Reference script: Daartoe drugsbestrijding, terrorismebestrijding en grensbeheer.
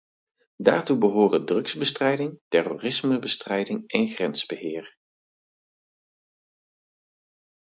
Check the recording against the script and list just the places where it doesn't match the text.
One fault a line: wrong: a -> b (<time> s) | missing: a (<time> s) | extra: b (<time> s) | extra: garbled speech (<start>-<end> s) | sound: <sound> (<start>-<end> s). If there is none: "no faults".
extra: behoren (1.0 s)